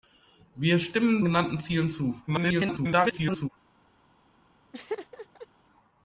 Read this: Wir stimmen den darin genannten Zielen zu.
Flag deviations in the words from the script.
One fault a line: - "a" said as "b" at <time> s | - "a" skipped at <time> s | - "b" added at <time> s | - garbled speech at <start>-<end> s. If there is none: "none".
- "den darin" skipped at 1.2 s
- garbled speech at 2.3-3.5 s